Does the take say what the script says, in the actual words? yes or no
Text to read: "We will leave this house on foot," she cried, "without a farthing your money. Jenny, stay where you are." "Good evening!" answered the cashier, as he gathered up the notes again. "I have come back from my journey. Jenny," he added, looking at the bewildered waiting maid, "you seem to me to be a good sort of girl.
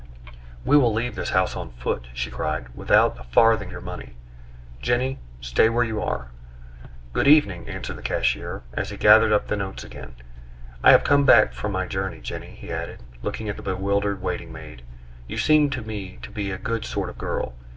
yes